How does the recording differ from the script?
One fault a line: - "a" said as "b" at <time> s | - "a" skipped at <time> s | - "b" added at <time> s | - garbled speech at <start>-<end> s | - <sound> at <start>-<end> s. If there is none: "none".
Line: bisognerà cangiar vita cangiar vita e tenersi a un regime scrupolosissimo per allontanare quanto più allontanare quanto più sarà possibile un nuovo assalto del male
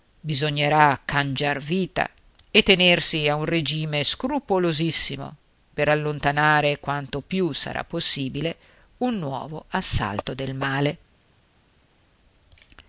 - "cangiar vita" skipped at 2.1 s
- "allontanare quanto più" skipped at 7.5 s